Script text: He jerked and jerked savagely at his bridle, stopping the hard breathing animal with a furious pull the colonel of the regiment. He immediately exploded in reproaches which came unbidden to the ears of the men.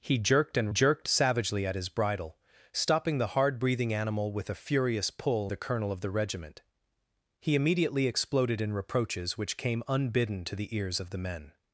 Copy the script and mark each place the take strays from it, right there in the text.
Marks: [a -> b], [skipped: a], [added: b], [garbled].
He jerked and jerked savagely at his bridle, stopping the hard breathing animal with a furious pull the colonel of the regiment. He immediately exploded in reproaches which came unbidden to the ears of the men.